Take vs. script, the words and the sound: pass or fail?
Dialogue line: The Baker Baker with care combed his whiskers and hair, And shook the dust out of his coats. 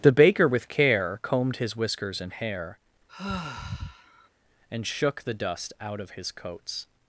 fail